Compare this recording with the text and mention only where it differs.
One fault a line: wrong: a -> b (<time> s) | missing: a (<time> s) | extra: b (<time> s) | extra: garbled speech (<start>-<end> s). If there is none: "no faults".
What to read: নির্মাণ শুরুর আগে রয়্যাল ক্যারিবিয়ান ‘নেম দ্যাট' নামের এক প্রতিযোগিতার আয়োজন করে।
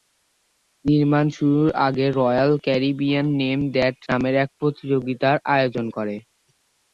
no faults